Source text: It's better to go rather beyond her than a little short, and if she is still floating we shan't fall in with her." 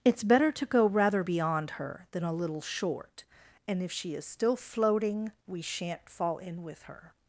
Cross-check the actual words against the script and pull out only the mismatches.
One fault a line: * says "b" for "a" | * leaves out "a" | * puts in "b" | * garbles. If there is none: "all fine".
all fine